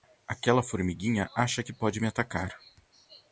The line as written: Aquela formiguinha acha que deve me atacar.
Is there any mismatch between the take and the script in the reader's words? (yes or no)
yes